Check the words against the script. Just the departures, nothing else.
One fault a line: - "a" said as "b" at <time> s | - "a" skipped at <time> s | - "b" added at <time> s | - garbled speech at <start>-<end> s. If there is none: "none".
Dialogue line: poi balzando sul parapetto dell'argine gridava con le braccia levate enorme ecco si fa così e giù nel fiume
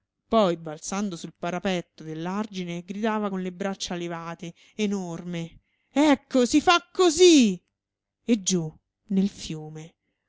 none